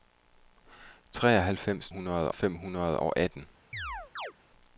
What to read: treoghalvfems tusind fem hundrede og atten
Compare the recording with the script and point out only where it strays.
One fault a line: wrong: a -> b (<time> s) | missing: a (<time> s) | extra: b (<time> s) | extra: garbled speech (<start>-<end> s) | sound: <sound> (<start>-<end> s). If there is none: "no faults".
wrong: tusind -> hundrede (1.9 s)
sound: chirp (3.7-4.3 s)